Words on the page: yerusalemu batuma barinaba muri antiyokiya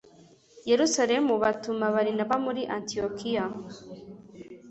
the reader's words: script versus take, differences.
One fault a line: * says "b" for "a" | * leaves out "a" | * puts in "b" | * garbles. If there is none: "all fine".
all fine